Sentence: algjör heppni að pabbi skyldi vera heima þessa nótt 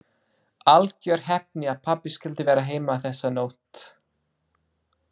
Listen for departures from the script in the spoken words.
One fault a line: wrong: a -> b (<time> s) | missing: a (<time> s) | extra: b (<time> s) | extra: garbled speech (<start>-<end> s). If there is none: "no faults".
no faults